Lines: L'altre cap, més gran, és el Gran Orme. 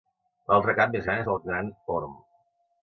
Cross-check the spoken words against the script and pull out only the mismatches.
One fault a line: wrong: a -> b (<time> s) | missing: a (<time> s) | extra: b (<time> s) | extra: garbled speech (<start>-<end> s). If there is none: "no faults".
no faults